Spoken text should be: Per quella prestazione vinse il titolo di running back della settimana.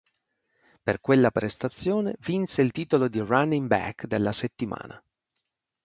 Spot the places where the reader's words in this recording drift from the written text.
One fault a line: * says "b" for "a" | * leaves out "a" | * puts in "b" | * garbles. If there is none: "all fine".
all fine